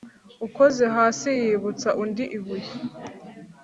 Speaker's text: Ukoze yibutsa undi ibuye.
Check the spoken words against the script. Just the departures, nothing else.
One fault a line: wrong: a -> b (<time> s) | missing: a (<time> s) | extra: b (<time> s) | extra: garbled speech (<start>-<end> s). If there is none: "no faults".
extra: hasi (0.9 s)